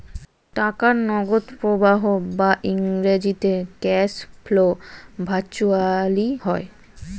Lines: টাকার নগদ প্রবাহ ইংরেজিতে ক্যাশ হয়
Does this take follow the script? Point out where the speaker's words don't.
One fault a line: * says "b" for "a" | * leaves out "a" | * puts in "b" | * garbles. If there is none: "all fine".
* puts in "বা"
* puts in "ফ্লো ভার্চুয়ালি"